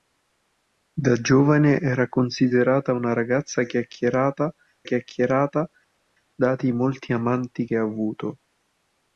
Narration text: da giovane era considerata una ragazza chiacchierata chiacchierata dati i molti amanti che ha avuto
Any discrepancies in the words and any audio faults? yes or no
no